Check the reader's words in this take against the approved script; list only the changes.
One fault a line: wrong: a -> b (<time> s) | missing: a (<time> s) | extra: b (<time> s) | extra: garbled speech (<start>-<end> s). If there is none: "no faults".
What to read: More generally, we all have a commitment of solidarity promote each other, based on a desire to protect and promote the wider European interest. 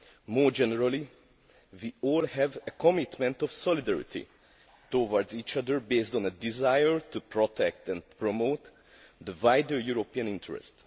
wrong: promote -> towards (4.9 s)